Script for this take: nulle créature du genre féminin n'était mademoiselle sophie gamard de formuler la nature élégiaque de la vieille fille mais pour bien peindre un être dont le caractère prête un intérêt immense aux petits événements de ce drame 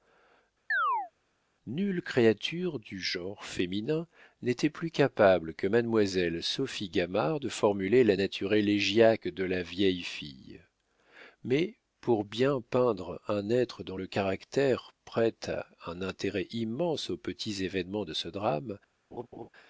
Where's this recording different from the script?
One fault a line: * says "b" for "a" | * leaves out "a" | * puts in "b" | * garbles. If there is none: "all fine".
* puts in "plus capable que"